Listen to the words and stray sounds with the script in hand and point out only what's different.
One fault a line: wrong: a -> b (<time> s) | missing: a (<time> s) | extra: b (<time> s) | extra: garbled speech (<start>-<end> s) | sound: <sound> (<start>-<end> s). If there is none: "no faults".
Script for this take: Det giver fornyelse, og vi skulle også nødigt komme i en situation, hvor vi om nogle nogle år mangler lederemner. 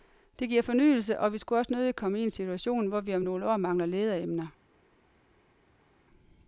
missing: nogle (3.4 s)